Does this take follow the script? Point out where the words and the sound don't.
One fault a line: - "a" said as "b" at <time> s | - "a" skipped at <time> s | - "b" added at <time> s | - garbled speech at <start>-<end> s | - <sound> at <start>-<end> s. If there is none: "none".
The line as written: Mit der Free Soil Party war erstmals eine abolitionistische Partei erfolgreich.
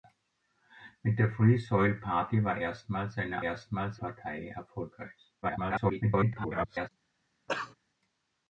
- "abolitionistische" said as "erstmals" at 3.4 s
- garbled speech at 5.4-6.9 s
- cough at 7.5-7.7 s